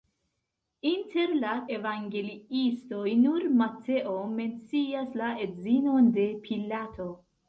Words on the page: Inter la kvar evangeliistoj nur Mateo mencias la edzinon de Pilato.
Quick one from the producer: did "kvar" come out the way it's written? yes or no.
no